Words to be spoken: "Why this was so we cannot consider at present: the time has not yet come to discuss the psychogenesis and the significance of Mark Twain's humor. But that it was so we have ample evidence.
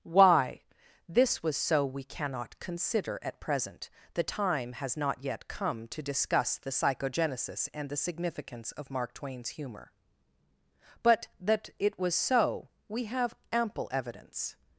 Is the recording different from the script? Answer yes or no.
no